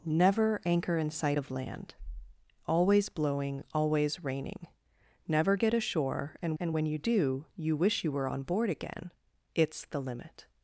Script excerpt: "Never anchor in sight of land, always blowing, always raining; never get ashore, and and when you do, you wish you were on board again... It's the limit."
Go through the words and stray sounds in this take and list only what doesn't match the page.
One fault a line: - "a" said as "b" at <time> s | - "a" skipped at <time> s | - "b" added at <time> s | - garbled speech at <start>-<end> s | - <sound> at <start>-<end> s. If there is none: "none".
none